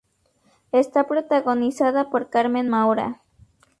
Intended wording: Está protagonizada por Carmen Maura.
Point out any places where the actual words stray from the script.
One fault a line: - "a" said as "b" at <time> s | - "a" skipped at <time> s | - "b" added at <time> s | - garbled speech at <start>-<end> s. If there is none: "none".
none